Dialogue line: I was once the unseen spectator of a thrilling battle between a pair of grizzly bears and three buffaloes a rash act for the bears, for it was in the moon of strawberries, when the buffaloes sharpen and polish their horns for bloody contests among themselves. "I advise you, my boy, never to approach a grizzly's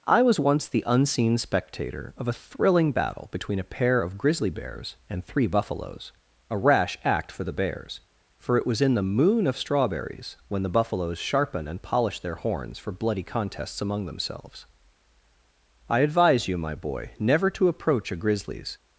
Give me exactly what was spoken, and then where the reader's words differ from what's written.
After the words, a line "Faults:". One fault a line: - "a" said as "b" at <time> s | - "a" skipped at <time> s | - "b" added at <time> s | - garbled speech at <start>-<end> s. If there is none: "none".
I was once the unseen spectator of a thrilling battle between a pair of grizzly bears and three buffaloes a rash act for the bears, for it was in the moon of strawberries, when the buffaloes sharpen and polish their horns for bloody contests among themselves. "I advise you, my boy, never to approach a grizzly's
Faults:
none